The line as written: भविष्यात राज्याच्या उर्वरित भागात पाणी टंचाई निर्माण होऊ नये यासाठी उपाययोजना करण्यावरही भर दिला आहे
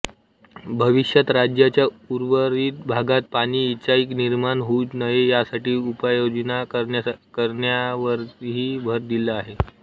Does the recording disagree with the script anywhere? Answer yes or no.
no